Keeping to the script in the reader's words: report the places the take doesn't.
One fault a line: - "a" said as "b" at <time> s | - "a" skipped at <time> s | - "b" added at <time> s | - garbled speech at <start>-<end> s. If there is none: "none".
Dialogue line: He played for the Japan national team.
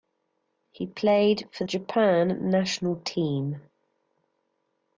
- "the" skipped at 1.6 s